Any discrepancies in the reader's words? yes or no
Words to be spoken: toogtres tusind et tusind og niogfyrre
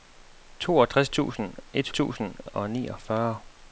no